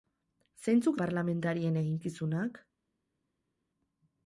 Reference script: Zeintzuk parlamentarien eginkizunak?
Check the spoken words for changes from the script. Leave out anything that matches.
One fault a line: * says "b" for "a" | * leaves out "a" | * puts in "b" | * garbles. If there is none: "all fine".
all fine